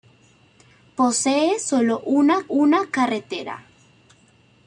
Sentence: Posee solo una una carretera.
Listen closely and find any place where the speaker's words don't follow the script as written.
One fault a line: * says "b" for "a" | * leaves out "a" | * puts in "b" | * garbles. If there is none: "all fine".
all fine